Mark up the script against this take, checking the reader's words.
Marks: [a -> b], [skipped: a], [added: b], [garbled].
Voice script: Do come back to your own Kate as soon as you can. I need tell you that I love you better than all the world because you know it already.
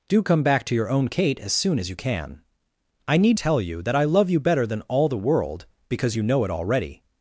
Do come back to your own Kate as soon as you can. I need tell you that I love you better than all the world because you know it already.